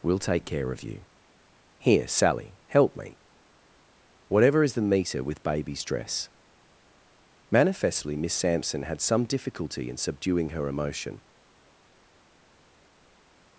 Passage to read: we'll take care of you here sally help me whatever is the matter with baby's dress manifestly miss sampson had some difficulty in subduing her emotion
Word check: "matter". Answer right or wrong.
wrong